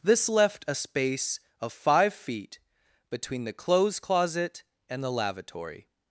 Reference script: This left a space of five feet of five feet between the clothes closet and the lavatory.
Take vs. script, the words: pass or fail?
fail